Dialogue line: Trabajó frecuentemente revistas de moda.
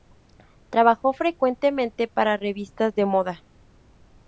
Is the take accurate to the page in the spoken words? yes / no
no